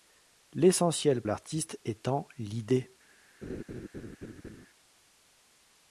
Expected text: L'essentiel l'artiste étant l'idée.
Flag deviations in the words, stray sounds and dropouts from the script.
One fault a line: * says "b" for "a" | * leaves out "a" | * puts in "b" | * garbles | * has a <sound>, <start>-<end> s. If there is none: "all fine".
* has a laugh, 3.4-4.7 s